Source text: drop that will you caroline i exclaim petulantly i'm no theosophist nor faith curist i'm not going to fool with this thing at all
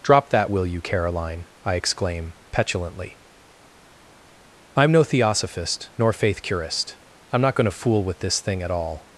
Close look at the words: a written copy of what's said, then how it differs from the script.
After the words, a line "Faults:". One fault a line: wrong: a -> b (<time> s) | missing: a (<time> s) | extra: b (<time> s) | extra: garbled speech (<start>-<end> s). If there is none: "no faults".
drop that will you caroline i exclaim petulantly i'm no theosophist nor faith curist i'm not going to fool with this thing at all
Faults:
no faults